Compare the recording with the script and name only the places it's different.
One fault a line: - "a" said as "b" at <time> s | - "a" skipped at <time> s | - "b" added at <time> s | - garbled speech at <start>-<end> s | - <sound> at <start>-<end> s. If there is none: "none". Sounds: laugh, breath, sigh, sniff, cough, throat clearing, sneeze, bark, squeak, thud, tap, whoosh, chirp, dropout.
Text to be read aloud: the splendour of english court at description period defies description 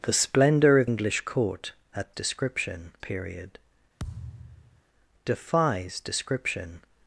- thud at 4.0-4.8 s